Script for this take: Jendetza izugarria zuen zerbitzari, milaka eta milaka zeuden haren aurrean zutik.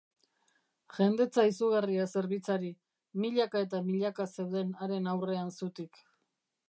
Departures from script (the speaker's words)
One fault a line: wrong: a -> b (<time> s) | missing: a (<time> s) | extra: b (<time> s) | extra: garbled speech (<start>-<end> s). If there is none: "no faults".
missing: zuen (2.1 s)